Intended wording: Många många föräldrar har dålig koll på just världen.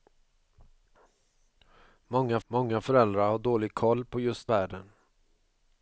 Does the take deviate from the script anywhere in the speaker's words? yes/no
no